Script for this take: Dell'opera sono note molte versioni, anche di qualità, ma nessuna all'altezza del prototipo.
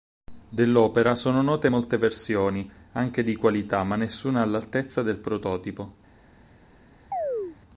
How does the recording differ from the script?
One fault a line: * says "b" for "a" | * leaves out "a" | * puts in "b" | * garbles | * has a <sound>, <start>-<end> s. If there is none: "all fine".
* has a chirp, 7.1-7.6 s